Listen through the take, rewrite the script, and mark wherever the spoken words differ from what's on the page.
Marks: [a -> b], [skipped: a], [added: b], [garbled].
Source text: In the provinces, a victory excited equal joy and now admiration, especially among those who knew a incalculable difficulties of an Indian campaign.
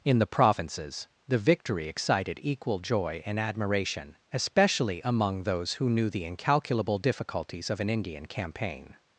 In the provinces, [a -> the] victory excited equal joy and [skipped: now] admiration, especially among those who knew [a -> the] incalculable difficulties of an Indian campaign.